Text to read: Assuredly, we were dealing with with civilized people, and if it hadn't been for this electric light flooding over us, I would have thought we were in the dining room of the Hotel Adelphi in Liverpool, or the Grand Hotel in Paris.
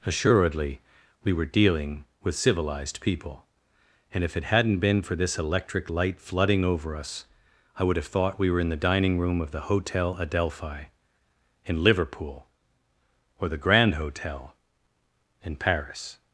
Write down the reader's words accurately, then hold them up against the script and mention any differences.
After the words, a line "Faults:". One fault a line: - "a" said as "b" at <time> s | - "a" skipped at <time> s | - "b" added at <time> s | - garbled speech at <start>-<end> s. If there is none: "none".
Assuredly, we were dealing with civilized people, and if it hadn't been for this electric light flooding over us, I would have thought we were in the dining room of the Hotel Adelphi in Liverpool, or the Grand Hotel in Paris.
Faults:
- "with" skipped at 2.4 s